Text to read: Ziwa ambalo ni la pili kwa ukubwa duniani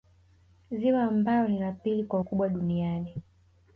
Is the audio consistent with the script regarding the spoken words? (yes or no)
yes